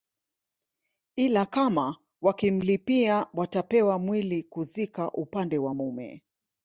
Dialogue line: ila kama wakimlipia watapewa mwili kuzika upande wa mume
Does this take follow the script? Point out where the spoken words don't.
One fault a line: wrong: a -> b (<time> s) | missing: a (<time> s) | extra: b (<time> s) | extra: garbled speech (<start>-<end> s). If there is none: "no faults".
no faults